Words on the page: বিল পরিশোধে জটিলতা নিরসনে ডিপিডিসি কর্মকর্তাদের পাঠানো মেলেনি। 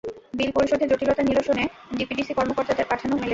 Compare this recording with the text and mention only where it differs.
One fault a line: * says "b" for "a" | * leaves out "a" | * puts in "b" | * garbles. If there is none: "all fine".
all fine